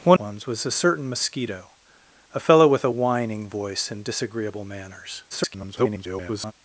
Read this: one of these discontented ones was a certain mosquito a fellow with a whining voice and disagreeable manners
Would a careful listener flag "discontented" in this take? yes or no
yes